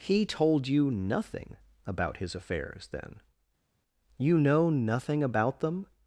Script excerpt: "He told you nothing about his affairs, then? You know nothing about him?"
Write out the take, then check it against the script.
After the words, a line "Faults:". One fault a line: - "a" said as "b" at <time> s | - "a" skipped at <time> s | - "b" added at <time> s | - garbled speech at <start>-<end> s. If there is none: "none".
"He told you nothing about his affairs, then? You know nothing about them?"
Faults:
- "him" said as "them" at 5.6 s